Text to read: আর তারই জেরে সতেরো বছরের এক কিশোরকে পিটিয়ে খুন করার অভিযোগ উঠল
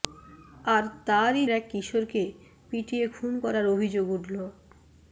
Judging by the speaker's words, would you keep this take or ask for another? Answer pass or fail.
fail